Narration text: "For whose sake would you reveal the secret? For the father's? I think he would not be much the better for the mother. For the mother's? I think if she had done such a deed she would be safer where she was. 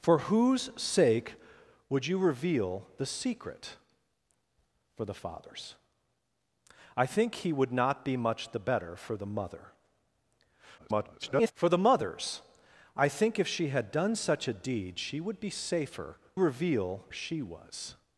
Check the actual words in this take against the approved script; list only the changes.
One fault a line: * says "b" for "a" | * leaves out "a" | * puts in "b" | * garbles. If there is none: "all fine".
* garbles
* says "reveal" for "where"